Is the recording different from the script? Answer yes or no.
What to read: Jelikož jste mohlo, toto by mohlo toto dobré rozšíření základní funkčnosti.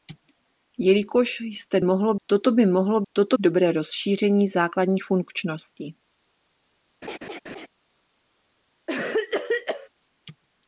no